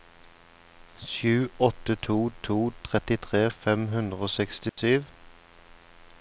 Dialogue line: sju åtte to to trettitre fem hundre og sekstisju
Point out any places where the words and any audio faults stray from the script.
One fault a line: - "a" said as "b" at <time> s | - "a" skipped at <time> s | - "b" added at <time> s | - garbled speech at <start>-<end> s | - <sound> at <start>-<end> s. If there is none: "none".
- dropout at 4.7-4.8 s